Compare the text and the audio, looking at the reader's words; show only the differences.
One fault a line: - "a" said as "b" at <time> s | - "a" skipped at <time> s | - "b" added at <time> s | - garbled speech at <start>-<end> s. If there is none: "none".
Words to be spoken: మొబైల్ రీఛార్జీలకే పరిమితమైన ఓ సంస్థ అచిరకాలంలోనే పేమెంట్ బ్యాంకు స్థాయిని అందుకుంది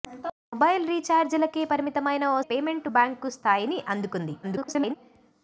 - "సంస్థ అచిరకాలంలోనే" skipped at 2.4 s
- garbled speech at 4.4-5.0 s